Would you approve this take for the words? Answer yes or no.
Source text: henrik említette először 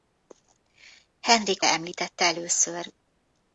yes